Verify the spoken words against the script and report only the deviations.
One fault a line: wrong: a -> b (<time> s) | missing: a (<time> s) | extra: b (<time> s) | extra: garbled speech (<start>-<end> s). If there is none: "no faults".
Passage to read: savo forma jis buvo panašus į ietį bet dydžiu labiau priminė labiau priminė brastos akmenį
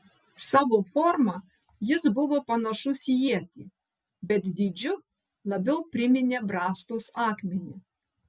missing: labiau priminė (6.5 s)